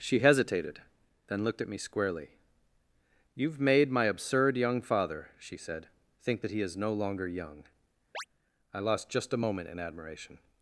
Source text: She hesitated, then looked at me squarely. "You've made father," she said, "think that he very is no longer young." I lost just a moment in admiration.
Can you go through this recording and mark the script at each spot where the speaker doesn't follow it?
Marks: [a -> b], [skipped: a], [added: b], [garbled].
She hesitated, then looked at me squarely. "You've made [added: my absurd young] father," she said, "think that he [skipped: very] is no longer young." I lost just a moment in admiration.